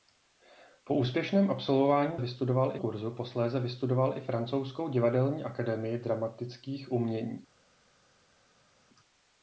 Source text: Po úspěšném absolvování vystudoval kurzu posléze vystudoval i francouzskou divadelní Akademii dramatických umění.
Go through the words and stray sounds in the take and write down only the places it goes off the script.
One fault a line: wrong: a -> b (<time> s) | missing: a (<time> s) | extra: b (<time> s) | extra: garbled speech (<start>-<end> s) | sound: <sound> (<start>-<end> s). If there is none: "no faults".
no faults